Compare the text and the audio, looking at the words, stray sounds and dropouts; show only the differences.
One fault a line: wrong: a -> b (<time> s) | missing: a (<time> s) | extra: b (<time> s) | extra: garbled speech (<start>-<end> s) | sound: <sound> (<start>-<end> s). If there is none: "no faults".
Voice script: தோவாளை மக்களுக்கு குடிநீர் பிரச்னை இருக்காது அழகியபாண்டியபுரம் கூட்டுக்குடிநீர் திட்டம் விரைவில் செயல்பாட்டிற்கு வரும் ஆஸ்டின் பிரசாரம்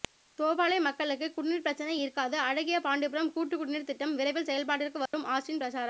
sound: dropout (5.1-5.1 s)